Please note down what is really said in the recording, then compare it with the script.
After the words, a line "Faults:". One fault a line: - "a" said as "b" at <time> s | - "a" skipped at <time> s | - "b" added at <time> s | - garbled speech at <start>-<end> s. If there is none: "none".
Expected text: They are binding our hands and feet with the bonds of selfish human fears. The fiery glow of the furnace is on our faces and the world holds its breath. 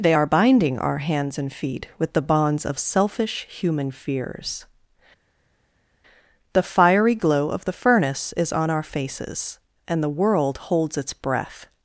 They are binding our hands and feet with the bonds of selfish human fears. The fiery glow of the furnace is on our faces and the world holds its breath.
Faults:
none